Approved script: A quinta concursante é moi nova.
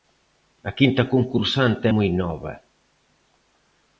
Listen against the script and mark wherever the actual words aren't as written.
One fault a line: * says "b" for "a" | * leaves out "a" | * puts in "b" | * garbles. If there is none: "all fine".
all fine